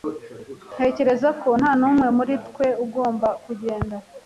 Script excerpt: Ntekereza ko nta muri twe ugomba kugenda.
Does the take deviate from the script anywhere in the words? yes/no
yes